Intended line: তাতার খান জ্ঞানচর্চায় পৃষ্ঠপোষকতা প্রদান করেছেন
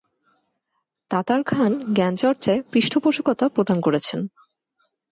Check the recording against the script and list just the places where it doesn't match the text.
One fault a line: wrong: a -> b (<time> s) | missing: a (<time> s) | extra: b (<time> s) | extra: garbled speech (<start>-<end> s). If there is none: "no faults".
no faults